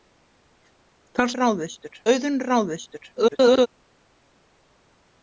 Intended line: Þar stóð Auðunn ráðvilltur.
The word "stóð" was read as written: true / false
false